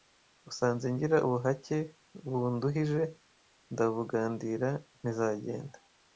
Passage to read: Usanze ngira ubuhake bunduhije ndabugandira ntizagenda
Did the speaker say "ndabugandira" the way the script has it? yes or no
yes